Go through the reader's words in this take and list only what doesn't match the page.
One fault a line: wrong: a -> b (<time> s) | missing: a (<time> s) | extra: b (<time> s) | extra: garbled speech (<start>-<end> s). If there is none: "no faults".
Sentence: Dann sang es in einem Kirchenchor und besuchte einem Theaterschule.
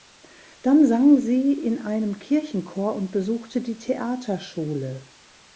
wrong: es -> sie (1.2 s)
wrong: einem -> die (3.6 s)